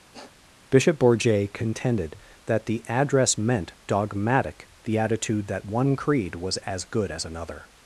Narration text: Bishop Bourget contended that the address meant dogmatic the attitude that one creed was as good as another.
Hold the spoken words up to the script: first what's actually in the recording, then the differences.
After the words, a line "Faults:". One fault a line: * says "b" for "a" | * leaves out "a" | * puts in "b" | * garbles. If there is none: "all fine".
Bishop Bourget contended that the address meant dogmatic the attitude that one creed was as good as another.
Faults:
all fine